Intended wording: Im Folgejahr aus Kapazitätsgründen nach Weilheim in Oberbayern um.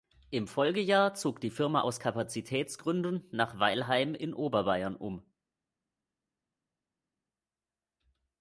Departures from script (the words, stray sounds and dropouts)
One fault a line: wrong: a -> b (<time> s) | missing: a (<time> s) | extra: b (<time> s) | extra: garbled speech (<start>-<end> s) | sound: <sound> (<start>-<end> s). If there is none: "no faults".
extra: zog die Firma (1.1 s)